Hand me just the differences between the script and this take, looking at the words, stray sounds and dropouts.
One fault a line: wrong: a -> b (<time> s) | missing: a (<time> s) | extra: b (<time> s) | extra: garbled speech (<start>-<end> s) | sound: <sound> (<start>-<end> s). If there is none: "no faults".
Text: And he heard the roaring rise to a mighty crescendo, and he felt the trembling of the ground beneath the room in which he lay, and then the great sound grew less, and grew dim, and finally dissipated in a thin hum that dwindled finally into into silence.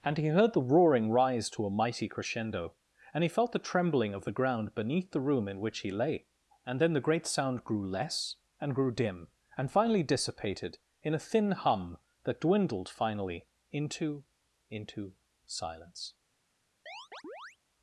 sound: chirp (16.9-17.6 s)